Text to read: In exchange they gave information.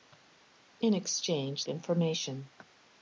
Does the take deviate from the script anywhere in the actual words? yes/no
yes